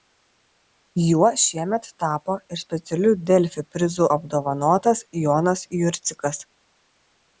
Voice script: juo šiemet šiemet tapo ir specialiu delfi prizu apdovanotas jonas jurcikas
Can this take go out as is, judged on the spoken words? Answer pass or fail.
fail